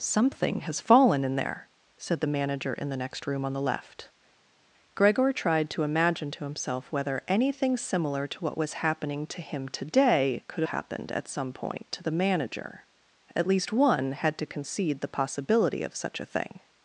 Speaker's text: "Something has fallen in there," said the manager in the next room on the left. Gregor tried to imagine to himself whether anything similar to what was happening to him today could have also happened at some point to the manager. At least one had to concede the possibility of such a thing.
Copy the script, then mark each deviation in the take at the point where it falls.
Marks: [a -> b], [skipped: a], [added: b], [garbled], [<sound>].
"Something has fallen in there," said the manager in the next room on the left. Gregor tried to imagine to himself whether anything similar to what was happening to him today could [skipped: have also] happened at some point to the manager. At least one had to concede the possibility of such a thing.